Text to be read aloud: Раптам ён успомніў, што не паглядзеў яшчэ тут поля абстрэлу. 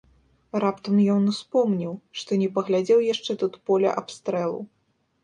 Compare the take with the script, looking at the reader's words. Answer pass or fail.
pass